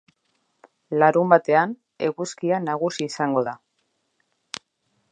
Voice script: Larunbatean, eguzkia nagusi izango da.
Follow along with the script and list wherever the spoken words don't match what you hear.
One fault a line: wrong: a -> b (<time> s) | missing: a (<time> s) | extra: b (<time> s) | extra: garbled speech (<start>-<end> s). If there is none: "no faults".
no faults